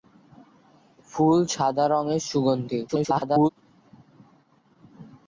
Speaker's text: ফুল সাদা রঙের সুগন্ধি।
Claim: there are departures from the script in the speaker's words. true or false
true